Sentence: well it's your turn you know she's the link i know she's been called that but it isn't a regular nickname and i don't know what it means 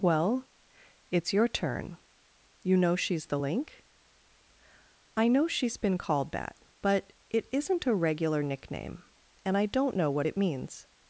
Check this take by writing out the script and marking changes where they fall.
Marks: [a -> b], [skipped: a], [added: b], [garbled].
well it's your turn you know she's the link i know she's been called that but it isn't a regular nickname and i don't know what it means